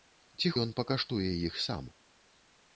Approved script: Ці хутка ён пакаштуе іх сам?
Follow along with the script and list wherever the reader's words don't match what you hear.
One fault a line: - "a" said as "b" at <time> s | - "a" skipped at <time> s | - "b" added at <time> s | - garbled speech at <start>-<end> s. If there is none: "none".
- "хутка" skipped at 0.5 s